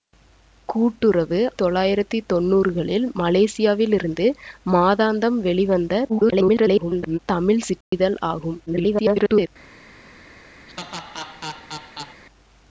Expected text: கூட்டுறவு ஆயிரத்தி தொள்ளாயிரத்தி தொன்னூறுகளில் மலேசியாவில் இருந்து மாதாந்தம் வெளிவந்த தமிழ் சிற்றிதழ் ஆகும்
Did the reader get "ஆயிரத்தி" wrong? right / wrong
wrong